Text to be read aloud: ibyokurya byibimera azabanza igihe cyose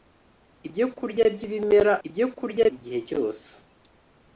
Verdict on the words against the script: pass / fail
fail